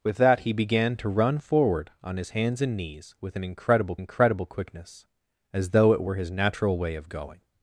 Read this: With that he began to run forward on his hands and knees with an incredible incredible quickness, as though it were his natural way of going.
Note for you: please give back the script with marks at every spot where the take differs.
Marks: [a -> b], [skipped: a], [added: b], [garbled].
With that he began to run forward on his hands and knees with an incredible incredible quickness, as though it were his natural way of going.